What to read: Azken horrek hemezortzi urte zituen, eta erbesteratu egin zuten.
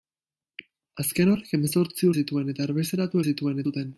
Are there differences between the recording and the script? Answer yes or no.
yes